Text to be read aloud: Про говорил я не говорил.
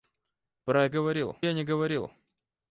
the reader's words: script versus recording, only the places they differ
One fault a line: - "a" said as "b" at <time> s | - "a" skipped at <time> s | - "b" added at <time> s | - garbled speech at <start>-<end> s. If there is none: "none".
none